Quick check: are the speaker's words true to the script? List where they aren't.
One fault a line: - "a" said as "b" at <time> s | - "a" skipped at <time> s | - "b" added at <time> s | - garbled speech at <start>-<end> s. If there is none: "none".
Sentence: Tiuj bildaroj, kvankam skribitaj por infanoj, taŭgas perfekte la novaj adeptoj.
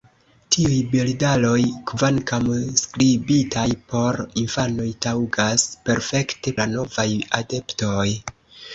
none